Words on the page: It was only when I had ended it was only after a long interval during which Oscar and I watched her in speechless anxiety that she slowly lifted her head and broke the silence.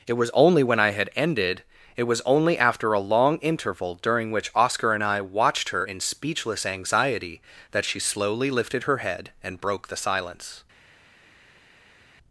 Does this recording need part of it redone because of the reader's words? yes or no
no